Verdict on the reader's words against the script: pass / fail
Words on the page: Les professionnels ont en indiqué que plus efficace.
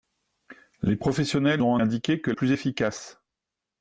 pass